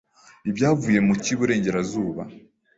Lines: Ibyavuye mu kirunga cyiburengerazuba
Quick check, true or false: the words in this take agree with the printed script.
false